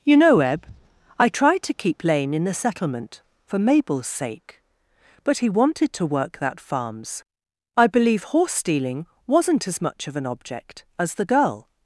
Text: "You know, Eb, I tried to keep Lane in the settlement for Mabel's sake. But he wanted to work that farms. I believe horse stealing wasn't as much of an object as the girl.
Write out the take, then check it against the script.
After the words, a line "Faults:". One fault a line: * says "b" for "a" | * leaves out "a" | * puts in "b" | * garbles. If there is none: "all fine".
"You know, Eb, I tried to keep Lane in the settlement for Mabel's sake. But he wanted to work that farms. I believe horse stealing wasn't as much of an object as the girl.
Faults:
all fine